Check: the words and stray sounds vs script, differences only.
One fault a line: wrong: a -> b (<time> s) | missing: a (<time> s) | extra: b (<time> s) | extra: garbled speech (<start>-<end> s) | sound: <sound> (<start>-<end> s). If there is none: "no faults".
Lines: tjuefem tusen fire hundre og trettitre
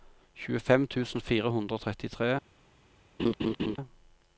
sound: laugh (3.2-3.8 s)